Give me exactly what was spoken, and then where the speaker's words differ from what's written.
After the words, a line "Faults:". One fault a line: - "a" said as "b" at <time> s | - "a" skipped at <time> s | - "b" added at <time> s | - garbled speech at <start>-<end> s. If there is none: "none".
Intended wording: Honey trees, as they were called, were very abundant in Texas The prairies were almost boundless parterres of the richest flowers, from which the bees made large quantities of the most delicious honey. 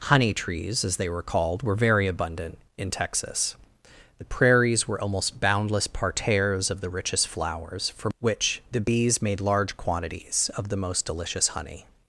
Honey trees, as they were called, were very abundant in Texas The prairies were almost boundless parterres of the richest flowers, from which the bees made large quantities of the most delicious honey.
Faults:
none